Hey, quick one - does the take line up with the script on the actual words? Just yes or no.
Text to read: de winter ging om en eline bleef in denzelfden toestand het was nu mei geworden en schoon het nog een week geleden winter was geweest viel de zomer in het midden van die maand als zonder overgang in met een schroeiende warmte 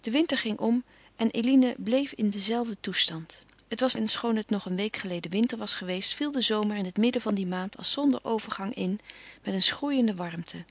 no